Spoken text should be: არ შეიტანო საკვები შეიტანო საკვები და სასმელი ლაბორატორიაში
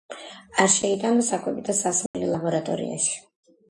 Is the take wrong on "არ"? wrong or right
right